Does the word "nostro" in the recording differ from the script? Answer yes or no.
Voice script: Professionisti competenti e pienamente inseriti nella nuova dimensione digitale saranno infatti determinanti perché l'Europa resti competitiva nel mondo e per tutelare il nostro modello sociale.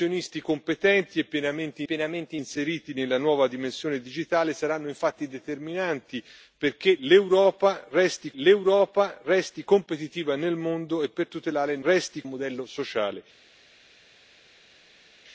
yes